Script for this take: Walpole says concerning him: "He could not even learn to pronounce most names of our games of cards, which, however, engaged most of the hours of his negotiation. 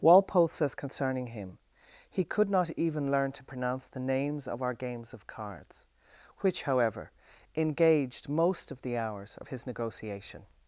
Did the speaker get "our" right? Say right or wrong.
right